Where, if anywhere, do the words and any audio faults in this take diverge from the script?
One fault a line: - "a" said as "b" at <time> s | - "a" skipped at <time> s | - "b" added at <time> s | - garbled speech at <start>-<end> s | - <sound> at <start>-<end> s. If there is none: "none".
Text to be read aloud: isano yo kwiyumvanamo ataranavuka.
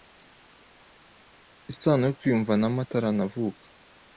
none